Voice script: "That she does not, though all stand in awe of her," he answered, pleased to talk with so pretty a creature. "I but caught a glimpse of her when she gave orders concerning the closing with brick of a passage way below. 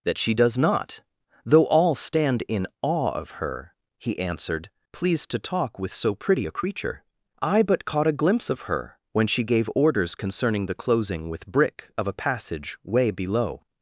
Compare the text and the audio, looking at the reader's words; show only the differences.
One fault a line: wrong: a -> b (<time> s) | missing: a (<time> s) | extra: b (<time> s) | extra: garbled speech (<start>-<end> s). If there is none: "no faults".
no faults